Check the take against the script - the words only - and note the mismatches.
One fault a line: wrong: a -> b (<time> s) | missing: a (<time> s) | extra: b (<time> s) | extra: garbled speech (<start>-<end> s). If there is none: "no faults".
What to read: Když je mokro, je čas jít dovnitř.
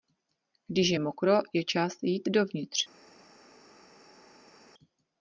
no faults